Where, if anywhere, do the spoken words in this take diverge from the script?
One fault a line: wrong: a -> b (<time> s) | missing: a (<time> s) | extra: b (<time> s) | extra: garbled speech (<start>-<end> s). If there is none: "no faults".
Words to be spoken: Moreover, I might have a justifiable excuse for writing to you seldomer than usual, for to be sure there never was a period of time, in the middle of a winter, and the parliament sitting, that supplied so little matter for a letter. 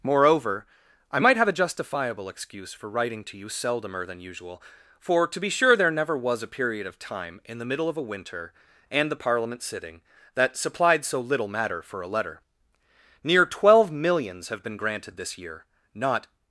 extra: Near twelve millions have been granted this year not (13.2 s)